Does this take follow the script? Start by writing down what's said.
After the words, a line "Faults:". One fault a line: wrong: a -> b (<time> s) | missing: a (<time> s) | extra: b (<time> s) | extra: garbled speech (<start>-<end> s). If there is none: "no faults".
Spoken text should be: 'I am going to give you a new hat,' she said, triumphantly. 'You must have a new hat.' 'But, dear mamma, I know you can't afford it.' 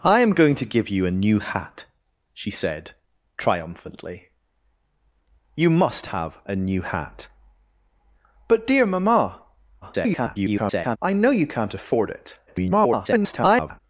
'I am going to give you a new hat,' she said, triumphantly. 'You must have a new hat.' 'But, dear mamma, [garbled] I know you can't afford it.' [garbled]
Faults:
extra: garbled speech (9.8-11.0 s)
extra: garbled speech (12.5-13.8 s)